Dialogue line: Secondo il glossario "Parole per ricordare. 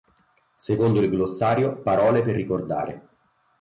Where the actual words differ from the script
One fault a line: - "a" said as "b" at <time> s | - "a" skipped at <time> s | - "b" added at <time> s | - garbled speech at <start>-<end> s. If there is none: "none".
none